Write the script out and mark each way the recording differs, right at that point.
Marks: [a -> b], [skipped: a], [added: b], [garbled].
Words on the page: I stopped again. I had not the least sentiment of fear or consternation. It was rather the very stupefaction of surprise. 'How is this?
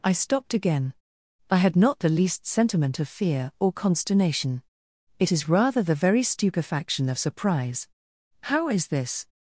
I stopped again. I had not the least sentiment of fear or consternation. It [was -> is] rather the very stupefaction of surprise. 'How is this?